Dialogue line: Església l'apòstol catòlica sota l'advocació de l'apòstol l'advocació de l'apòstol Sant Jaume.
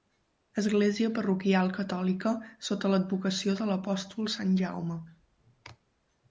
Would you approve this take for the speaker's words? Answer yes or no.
no